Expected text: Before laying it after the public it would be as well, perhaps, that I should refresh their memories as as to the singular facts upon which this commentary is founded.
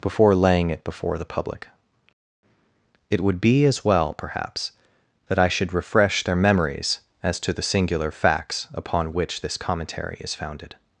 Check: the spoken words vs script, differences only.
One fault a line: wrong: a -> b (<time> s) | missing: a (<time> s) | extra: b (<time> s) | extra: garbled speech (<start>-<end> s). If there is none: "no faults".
wrong: after -> before (0.8 s)
missing: as (7.4 s)